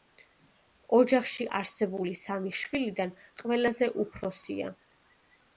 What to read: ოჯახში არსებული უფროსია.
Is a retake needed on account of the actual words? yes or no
yes